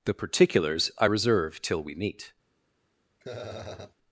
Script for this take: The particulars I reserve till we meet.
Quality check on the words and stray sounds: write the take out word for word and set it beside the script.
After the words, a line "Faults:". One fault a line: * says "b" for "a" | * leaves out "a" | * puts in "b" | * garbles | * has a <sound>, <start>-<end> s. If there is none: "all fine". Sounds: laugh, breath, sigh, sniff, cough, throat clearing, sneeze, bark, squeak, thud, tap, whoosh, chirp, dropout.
The particulars I reserve till we meet.
Faults:
* has a laugh, 3.2-4.0 s